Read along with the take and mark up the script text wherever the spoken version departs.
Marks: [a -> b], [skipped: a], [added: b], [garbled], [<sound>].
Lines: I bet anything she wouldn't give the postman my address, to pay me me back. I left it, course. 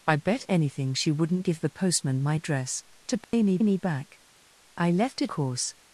I bet anything she wouldn't give the postman my address, to pay [dropout] me me back. I left it, course.